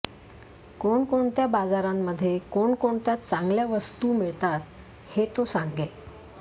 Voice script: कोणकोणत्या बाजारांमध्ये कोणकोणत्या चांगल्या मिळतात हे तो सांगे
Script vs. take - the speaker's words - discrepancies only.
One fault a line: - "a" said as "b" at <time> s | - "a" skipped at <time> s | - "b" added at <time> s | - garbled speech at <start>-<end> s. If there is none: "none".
- "वस्तू" added at 3.6 s